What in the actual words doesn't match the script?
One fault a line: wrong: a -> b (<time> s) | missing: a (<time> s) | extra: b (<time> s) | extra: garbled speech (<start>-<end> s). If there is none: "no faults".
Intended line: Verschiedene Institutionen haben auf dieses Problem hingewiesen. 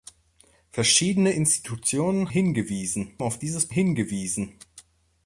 wrong: haben -> hingewiesen (2.3 s)
missing: Problem (3.7 s)